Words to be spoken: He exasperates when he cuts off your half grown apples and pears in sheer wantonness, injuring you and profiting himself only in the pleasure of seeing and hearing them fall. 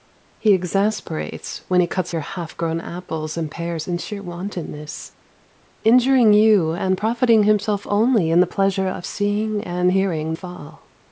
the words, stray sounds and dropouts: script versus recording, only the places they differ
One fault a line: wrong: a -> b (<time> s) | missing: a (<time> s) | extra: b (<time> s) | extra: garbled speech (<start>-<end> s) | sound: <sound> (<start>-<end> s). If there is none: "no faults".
missing: off (2.1 s)
missing: them (10.3 s)